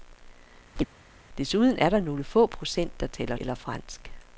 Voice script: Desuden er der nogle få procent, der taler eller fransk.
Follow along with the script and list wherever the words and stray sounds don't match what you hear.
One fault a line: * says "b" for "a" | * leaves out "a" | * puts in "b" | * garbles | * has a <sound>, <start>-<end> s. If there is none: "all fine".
* has a chirp, 0.8-0.9 s